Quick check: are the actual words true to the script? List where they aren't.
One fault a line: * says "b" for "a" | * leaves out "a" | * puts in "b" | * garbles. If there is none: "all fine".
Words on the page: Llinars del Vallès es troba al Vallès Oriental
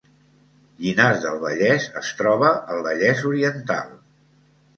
all fine